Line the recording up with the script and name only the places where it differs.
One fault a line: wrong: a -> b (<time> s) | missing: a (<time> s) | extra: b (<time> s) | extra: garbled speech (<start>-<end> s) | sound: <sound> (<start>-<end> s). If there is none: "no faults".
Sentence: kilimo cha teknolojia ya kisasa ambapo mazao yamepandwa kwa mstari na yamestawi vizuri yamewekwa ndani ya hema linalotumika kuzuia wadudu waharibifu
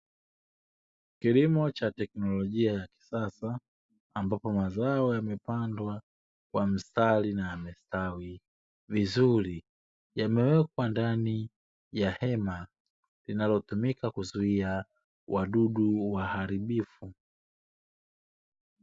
no faults